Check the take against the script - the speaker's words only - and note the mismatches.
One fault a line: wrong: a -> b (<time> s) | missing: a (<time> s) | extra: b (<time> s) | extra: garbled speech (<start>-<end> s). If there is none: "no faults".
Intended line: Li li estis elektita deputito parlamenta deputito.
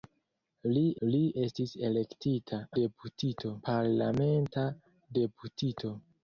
no faults